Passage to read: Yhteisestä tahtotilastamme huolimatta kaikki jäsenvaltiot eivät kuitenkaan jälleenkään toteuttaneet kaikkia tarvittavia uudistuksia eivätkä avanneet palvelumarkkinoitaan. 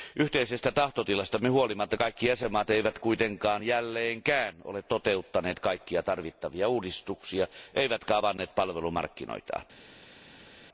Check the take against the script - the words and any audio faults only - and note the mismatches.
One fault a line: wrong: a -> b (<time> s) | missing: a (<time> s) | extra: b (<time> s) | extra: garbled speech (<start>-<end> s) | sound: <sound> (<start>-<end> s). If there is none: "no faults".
extra: ole (4.6 s)